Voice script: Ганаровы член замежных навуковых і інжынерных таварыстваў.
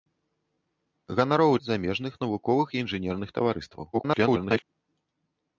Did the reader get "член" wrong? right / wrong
wrong